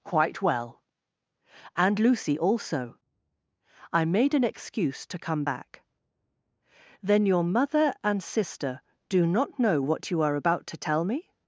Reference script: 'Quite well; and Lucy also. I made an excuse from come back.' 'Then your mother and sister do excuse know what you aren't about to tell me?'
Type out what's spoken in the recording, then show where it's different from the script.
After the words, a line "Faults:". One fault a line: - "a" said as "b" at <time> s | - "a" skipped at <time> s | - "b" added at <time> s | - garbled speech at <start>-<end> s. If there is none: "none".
'Quite well; and Lucy also. I made an excuse to come back.' 'Then your mother and sister do not know what you are about to tell me?'
Faults:
- "from" said as "to" at 5.1 s
- "excuse" said as "not" at 9.2 s
- "aren't" said as "are" at 10.2 s